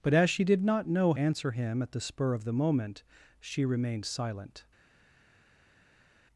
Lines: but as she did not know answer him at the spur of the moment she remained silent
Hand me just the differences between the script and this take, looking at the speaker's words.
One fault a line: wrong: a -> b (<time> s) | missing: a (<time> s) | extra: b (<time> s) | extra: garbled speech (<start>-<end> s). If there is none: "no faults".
no faults